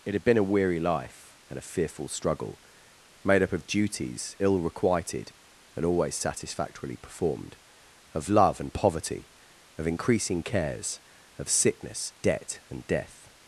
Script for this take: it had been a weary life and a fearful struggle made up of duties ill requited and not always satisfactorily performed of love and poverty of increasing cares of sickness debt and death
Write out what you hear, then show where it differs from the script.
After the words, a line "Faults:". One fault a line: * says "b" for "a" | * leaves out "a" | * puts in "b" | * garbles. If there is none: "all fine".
it had been a weary life and a fearful struggle made up of duties ill requited and always satisfactorily performed of love and poverty of increasing cares of sickness debt and death
Faults:
* leaves out "not"